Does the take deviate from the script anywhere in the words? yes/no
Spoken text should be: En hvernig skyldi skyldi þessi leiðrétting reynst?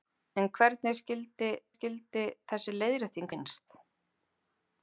no